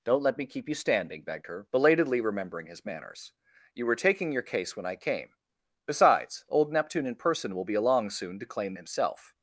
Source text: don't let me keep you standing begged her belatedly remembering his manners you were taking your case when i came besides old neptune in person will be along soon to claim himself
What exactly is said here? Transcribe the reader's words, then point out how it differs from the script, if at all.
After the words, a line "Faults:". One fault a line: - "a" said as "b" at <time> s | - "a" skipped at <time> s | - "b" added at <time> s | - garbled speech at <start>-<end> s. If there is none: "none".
don't let me keep you standing begged her belatedly remembering his manners you were taking your case when i came besides old neptune in person will be along soon to claim himself
Faults:
none